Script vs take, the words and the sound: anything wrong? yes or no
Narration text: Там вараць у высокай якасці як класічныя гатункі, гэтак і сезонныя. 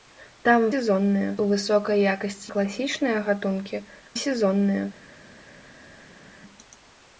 yes